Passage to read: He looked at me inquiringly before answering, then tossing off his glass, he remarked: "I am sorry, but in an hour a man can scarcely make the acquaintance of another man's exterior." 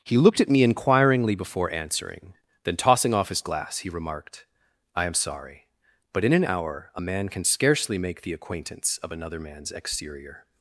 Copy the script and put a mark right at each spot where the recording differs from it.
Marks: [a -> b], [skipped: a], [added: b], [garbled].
He looked at me inquiringly before answering, then tossing off his glass, he remarked: "I am sorry, but in an hour a man can scarcely make the acquaintance of another man's exterior."